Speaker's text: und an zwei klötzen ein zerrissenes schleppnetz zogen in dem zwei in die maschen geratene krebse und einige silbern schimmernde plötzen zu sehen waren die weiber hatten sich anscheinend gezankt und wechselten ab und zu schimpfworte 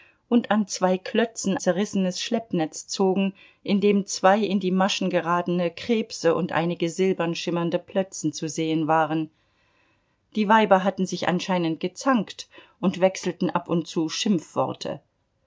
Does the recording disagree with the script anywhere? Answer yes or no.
yes